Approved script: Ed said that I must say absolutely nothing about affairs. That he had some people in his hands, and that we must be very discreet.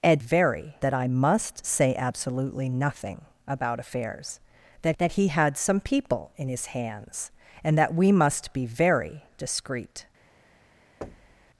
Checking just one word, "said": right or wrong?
wrong